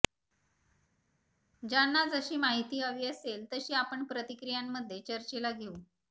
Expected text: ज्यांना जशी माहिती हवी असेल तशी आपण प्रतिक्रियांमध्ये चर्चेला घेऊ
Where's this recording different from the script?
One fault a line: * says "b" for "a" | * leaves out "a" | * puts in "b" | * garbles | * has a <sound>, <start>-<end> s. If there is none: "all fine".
all fine